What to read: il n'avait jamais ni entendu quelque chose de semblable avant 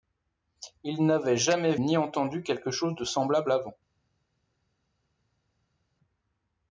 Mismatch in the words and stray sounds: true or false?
false